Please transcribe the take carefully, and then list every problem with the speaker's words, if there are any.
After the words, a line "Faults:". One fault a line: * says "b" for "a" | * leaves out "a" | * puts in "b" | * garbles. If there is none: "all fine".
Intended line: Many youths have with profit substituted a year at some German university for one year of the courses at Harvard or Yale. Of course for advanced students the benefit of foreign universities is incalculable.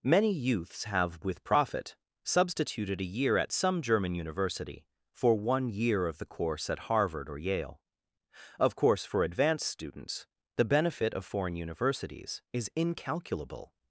Many youths have with profit substituted a year at some German university for one year of the course at Harvard or Yale. Of course for advanced students the benefit of foreign universities is incalculable.
Faults:
* says "course" for "courses"